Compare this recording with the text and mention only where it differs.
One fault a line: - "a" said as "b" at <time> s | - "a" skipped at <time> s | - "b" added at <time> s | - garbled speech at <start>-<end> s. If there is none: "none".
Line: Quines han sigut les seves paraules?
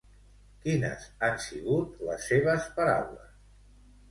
none